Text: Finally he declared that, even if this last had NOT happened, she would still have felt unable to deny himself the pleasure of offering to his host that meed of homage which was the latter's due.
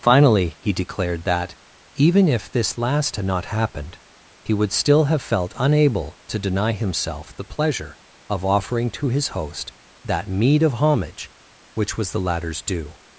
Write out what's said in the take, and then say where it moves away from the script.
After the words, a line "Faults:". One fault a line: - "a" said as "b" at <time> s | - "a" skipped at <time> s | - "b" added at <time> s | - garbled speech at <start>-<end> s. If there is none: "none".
Finally he declared that, even if this last had NOT happened, he would still have felt unable to deny himself the pleasure of offering to his host that meed of homage which was the latter's due.
Faults:
- "she" said as "he" at 4.4 s